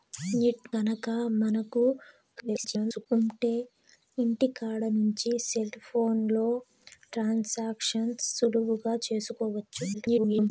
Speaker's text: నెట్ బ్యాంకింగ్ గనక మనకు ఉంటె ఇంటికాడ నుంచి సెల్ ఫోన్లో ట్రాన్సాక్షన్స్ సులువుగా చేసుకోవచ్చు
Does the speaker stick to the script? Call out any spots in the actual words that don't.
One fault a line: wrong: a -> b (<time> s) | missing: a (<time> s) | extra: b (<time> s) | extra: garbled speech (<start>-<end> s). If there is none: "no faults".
missing: బ్యాంకింగ్ (0.7 s)
extra: garbled speech (2.4-3.1 s)
extra: garbled speech (9.9-10.5 s)